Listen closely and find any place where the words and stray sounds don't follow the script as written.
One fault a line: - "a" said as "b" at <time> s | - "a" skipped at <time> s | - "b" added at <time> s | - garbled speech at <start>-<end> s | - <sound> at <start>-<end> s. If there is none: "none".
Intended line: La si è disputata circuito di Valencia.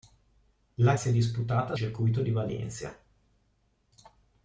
none